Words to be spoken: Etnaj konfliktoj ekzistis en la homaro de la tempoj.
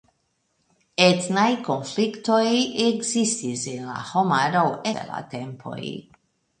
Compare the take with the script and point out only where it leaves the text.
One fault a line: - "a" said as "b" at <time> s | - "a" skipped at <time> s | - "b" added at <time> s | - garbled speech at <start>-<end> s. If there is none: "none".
none